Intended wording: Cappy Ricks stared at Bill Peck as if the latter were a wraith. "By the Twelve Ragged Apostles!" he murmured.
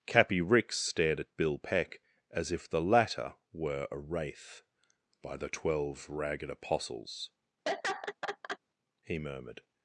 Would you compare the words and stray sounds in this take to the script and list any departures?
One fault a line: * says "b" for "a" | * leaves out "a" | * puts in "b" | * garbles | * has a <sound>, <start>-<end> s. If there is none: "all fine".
* has a laugh, 7.7-8.6 s